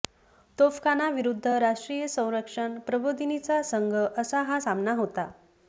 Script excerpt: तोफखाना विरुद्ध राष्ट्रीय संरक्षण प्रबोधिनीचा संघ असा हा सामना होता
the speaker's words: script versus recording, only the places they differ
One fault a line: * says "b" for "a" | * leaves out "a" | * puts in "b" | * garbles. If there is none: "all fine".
all fine